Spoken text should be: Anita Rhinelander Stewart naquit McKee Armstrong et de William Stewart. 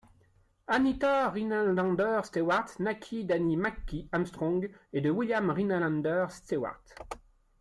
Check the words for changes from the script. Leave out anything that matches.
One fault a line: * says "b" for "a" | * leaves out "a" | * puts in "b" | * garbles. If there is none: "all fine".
* puts in "d'Annie"
* puts in "Rhinelander"